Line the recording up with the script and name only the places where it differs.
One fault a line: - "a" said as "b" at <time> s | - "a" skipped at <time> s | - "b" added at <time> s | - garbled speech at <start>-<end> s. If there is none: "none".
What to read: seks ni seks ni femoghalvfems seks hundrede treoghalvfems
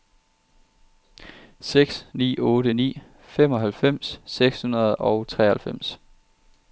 - "seks" said as "otte" at 2.4 s
- "og" added at 4.9 s